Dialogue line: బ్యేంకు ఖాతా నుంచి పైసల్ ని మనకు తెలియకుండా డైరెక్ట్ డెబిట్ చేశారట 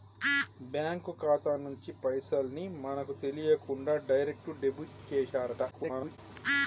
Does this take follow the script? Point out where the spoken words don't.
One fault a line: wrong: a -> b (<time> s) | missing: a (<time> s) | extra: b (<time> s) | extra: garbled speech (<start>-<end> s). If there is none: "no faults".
extra: garbled speech (5.7-6.2 s)